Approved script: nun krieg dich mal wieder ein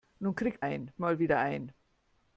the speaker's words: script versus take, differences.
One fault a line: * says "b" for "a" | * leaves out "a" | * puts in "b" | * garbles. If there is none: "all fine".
* says "ein" for "dich"